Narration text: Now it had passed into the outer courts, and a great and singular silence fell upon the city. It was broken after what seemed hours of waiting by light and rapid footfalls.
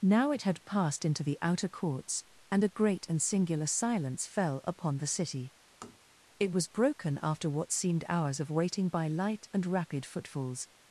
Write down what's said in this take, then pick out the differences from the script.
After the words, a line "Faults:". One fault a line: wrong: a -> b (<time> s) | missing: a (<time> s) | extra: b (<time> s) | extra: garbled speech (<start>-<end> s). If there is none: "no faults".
Now it had passed into the outer courts, and a great and singular silence fell upon the city. It was broken after what seemed hours of waiting by light and rapid footfalls.
Faults:
no faults